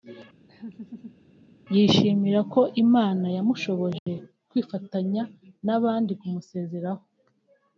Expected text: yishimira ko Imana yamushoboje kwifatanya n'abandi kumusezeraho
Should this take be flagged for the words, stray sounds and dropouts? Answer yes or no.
yes